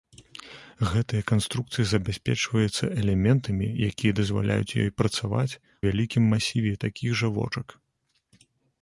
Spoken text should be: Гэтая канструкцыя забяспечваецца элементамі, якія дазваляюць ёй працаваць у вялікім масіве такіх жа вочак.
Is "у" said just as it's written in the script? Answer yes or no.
no